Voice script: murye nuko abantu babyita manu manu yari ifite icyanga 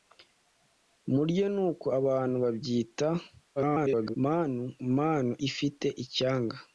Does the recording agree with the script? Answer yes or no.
no